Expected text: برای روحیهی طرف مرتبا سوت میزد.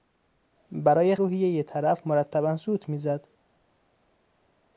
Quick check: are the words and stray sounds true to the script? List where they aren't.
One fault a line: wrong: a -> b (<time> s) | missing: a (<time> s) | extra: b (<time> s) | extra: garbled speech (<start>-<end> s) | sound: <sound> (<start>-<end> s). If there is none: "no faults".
no faults